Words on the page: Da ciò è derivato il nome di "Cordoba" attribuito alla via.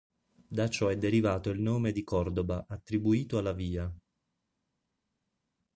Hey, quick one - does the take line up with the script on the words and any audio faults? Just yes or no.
yes